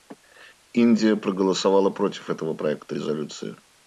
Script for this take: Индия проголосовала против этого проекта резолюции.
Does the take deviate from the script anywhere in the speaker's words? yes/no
no